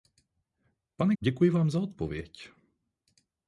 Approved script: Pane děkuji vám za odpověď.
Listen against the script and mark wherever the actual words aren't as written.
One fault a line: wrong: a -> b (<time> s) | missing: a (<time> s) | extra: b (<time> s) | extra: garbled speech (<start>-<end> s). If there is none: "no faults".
no faults